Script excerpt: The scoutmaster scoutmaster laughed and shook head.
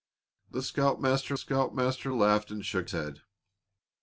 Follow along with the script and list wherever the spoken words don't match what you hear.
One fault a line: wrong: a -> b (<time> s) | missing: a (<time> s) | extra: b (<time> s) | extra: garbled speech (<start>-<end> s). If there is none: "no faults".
no faults